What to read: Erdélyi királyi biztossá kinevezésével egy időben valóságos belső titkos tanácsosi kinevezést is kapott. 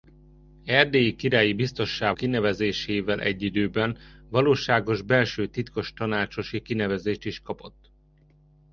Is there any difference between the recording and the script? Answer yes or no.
no